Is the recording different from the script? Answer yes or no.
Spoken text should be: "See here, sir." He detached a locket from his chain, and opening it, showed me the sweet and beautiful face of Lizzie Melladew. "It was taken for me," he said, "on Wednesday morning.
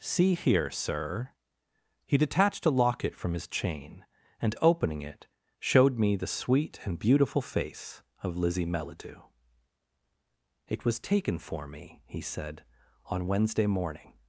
no